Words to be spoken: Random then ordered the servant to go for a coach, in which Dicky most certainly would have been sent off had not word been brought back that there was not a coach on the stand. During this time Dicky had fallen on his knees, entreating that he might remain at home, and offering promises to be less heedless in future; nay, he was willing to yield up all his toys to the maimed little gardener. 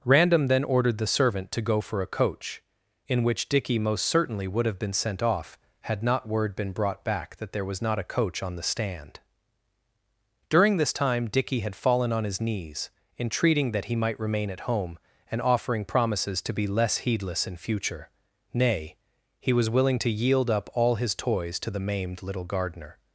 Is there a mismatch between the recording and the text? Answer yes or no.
no